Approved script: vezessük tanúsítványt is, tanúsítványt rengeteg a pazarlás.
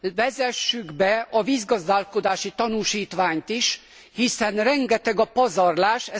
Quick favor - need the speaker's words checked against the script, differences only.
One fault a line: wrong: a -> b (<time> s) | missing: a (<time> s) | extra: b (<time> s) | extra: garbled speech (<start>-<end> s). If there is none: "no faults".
extra: be a vízgazdálkodási (0.9 s)
wrong: tanúsítványt -> hiszen (4.1 s)